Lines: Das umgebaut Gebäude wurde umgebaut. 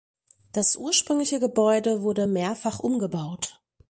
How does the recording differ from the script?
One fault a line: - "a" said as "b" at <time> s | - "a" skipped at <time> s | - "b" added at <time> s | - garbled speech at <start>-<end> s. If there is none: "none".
- "umgebaut" said as "ursprüngliche" at 0.8 s
- "mehrfach" added at 2.2 s